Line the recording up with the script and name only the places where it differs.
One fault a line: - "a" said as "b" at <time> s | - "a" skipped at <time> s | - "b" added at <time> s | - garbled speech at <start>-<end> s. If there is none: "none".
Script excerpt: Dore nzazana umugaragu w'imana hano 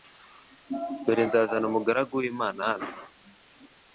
none